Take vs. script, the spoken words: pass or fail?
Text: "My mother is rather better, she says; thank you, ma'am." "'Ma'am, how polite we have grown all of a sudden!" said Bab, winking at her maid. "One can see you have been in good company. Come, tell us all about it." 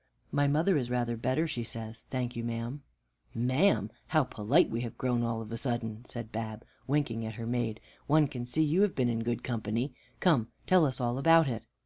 pass